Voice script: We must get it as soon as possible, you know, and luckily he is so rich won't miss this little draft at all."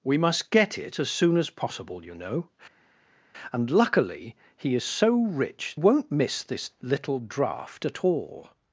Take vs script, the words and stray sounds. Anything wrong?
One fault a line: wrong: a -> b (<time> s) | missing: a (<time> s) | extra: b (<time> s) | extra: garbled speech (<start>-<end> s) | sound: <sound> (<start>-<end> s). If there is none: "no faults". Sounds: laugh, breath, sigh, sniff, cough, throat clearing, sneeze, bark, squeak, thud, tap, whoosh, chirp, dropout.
no faults